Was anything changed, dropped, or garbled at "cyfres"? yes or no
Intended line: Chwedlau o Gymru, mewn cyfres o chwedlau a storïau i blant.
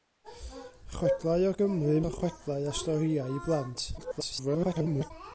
yes